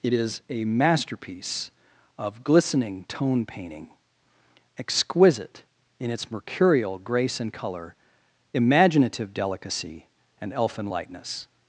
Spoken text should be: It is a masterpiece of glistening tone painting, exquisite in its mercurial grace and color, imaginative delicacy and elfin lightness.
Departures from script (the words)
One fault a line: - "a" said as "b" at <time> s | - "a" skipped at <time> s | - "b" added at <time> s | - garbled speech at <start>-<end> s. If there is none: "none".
none